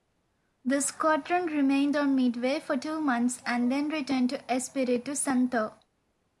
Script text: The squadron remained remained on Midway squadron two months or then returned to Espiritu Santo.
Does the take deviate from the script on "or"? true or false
true